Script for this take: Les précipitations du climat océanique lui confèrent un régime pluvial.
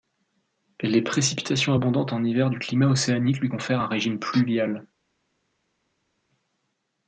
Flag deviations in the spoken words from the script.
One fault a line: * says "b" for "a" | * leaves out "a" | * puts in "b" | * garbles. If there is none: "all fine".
* puts in "abondantes en hiver"